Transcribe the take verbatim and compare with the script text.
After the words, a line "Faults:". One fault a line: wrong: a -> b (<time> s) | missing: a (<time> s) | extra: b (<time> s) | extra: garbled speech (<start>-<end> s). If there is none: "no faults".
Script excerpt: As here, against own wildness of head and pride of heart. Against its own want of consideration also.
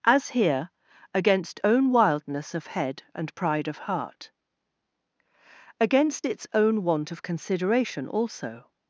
As here, against own wildness of head and pride of heart. Against its own want of consideration also.
Faults:
no faults